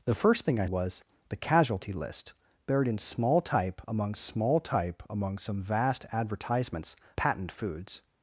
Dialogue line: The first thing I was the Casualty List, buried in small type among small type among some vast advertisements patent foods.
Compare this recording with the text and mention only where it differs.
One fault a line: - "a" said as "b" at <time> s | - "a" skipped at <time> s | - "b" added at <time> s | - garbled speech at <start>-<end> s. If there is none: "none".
none